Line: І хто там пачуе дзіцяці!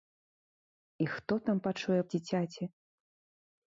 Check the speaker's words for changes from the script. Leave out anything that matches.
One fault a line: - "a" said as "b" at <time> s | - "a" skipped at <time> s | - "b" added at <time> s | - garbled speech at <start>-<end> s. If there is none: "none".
none